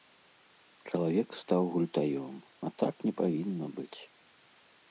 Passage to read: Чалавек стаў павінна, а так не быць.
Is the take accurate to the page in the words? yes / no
no